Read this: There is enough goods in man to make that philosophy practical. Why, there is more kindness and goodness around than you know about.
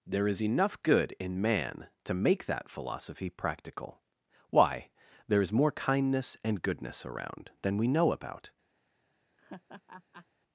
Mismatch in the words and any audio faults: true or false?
true